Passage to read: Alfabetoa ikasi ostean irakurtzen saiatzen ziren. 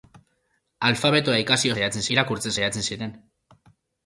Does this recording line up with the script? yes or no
no